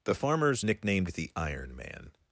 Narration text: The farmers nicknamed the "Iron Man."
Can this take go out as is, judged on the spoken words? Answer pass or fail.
pass